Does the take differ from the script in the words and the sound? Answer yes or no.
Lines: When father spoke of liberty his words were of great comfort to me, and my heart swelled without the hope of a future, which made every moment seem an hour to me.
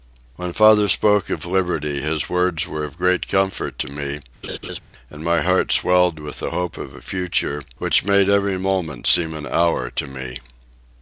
yes